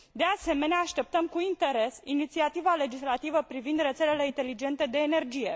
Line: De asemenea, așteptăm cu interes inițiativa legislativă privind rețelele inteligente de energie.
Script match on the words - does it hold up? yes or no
yes